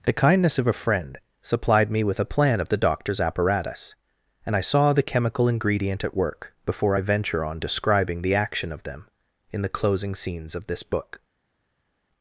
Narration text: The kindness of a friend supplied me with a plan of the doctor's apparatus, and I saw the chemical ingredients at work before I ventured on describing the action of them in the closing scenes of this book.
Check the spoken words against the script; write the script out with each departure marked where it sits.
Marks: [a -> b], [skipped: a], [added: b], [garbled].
The kindness of a friend supplied me with a plan of the doctor's apparatus, and I saw the chemical [ingredients -> ingredient] at work before I [ventured -> venture] on describing the action of them in the closing scenes of this book.